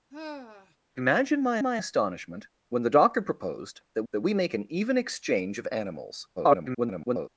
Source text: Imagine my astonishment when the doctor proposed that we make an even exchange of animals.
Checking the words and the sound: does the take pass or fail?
fail